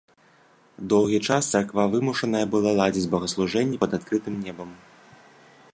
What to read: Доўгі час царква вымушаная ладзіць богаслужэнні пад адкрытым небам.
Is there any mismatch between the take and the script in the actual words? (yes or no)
yes